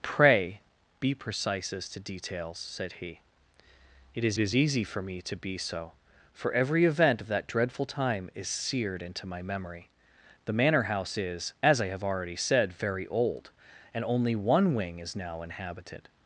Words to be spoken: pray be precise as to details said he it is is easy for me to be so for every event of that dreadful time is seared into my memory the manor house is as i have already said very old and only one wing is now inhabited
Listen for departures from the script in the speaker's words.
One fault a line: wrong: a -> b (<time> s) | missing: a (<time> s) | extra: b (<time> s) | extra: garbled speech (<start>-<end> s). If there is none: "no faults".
no faults